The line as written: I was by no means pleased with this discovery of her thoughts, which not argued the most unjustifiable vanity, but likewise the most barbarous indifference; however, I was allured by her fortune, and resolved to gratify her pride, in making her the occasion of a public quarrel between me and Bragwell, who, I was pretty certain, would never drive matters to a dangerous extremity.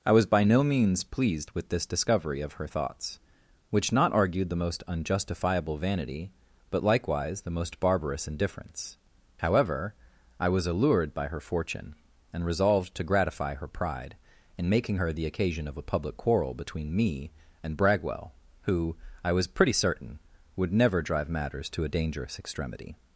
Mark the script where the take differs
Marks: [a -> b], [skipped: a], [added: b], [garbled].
I was by no means pleased with this discovery of her thoughts, which not argued the most unjustifiable vanity, but likewise the most barbarous indifference; however, I was allured by her fortune, and resolved to gratify her pride, in making her the occasion of a public quarrel between me and Bragwell, who, I was pretty certain, would never drive matters to a dangerous extremity.